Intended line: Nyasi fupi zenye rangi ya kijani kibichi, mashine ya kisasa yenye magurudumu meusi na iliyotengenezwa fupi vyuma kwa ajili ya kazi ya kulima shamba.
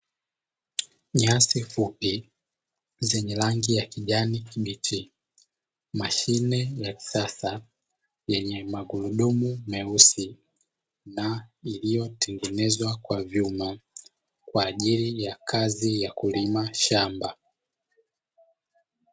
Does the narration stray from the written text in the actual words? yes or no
yes